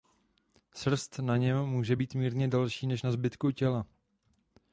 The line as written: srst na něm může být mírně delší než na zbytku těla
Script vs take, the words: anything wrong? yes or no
no